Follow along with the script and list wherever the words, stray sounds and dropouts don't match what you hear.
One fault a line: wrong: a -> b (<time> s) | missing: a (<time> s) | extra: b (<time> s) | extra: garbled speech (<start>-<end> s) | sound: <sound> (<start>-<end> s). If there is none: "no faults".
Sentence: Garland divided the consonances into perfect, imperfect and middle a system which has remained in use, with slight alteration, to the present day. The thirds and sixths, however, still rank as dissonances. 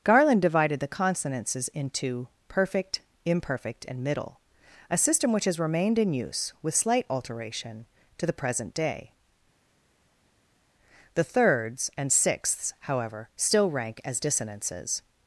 no faults